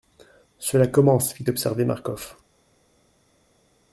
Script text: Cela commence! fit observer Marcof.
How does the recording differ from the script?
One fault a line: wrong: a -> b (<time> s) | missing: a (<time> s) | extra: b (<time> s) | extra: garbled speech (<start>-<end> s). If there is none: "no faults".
no faults